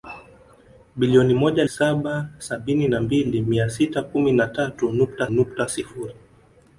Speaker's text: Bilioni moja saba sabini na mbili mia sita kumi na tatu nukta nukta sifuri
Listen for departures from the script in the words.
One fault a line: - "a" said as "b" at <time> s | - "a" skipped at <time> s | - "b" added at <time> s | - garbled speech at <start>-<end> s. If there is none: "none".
none